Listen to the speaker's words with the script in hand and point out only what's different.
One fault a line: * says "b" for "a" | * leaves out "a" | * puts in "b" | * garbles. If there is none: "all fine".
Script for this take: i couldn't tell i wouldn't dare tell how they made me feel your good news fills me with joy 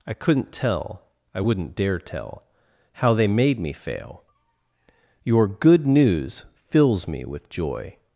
* says "fail" for "feel"